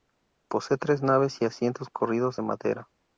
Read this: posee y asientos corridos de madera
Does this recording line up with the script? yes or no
no